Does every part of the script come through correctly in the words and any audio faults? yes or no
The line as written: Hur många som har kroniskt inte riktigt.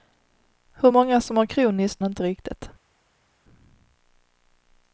yes